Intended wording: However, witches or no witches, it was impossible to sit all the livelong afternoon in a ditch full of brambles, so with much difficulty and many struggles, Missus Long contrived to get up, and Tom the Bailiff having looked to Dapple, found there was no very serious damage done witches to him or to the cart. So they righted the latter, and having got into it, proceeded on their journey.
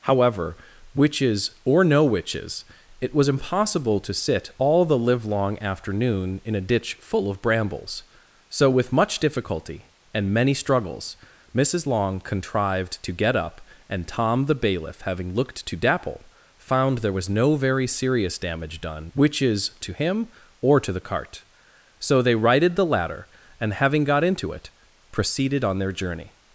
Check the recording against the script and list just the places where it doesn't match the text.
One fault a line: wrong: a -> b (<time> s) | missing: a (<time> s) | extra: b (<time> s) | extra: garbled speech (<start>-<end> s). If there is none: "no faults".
no faults